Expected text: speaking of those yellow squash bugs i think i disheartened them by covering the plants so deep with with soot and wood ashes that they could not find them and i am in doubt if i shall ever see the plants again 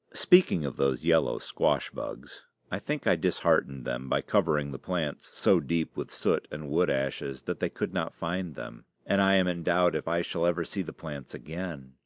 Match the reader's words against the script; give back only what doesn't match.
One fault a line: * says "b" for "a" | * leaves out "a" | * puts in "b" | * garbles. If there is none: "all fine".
* leaves out "with"